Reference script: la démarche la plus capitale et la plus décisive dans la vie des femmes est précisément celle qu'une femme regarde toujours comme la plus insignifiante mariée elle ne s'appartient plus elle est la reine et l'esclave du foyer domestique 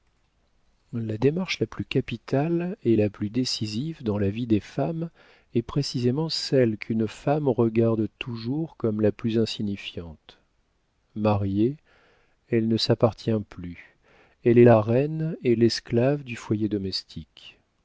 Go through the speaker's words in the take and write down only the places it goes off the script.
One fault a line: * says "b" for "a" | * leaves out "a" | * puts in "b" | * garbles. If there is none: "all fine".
all fine